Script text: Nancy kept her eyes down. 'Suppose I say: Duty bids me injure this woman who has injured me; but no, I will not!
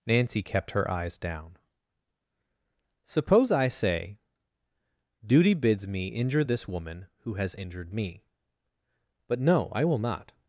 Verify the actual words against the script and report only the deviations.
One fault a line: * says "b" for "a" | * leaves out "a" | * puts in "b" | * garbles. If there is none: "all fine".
all fine